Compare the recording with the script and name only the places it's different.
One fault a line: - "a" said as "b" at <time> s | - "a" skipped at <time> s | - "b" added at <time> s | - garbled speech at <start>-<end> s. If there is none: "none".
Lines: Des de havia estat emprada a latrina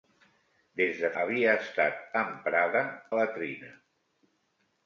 none